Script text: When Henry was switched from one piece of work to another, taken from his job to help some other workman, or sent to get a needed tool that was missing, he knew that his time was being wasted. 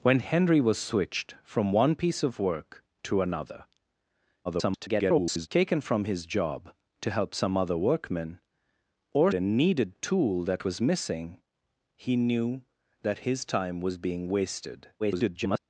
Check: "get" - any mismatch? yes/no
yes